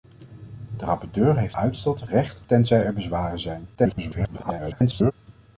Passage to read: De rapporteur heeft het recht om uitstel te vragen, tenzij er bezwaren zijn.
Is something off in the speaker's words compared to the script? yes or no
yes